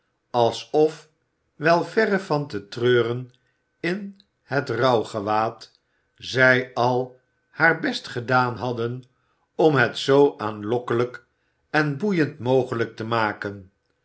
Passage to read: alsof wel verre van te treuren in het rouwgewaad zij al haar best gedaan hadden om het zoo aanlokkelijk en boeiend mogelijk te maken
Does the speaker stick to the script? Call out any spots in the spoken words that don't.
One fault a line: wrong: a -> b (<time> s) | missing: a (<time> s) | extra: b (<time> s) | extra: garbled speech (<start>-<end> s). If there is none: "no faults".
no faults